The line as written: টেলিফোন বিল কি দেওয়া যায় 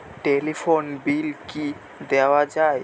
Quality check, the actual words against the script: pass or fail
pass